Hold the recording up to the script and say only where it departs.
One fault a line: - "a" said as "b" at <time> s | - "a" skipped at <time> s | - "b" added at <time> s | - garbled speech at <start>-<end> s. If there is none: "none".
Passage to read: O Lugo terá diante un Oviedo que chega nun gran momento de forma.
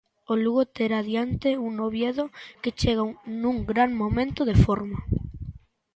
none